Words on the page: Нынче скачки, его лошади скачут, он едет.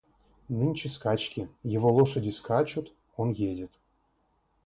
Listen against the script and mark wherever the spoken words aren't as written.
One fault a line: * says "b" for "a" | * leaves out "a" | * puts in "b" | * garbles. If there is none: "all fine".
all fine